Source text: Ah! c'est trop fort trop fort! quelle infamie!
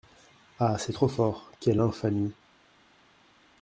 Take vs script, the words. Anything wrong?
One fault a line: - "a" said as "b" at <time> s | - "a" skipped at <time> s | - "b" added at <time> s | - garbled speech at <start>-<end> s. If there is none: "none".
- "trop fort" skipped at 1.5 s